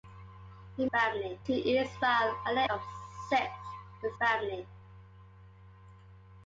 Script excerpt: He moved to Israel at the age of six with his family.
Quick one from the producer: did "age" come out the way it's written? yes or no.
no